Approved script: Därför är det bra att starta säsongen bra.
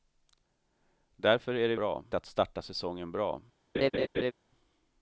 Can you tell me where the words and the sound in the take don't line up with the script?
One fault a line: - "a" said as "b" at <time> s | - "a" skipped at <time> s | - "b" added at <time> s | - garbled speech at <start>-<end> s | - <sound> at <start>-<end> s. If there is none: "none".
- laugh at 3.7-4.3 s